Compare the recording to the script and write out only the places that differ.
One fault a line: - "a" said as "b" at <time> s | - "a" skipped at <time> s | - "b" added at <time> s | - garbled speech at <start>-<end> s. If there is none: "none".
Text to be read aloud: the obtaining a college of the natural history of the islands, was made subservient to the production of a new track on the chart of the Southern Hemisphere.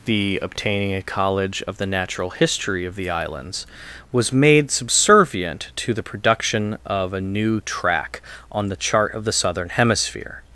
none